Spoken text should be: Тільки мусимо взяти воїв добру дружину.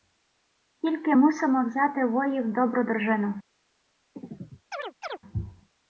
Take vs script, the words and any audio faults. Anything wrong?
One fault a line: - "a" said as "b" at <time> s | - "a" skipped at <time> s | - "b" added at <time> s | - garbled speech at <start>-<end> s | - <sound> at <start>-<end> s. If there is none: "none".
- chirp at 4.2-5.2 s